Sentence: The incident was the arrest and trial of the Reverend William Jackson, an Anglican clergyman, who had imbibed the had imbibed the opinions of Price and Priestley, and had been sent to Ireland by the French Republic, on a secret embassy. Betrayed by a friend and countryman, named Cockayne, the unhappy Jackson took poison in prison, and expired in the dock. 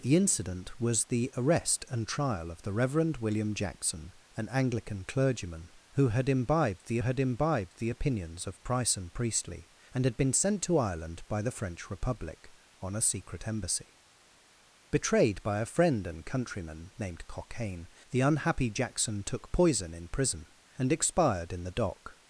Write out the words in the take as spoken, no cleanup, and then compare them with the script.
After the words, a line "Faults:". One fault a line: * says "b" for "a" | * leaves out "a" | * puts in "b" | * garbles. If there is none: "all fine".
The incident was the arrest and trial of the Reverend William Jackson, an Anglican clergyman, who had imbibed the had imbibed the opinions of Price and Priestley, and had been sent to Ireland by the French Republic, on a secret embassy. Betrayed by a friend and countryman, named Cockayne, the unhappy Jackson took poison in prison, and expired in the dock.
Faults:
all fine